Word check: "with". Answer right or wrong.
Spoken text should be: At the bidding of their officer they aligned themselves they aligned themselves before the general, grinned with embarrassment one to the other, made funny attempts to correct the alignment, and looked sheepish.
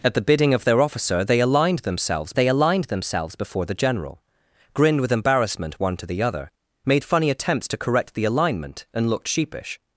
right